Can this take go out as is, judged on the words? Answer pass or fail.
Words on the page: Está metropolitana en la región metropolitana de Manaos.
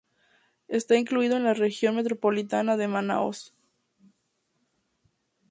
fail